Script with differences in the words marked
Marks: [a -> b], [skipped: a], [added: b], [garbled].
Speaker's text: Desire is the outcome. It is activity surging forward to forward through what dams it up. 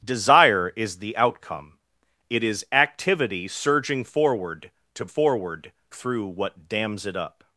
Desire is the outcome. It is activity surging forward to forward through what dams it up.